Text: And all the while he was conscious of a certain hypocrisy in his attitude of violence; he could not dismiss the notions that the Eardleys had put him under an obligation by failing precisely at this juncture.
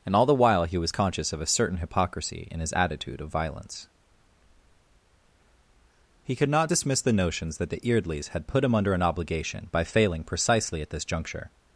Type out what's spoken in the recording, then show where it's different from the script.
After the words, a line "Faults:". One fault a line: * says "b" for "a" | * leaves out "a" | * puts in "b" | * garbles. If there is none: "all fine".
And all the while he was conscious of a certain hypocrisy in his attitude of violence; he could not dismiss the notions that the Eardleys had put him under an obligation by failing precisely at this juncture.
Faults:
all fine